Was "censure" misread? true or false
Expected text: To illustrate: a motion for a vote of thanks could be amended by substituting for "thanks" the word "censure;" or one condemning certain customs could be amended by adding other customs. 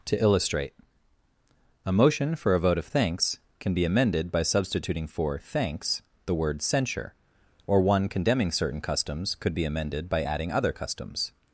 false